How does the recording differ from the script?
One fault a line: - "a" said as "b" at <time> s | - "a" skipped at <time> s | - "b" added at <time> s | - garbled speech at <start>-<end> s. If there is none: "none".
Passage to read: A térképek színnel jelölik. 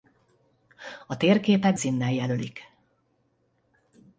none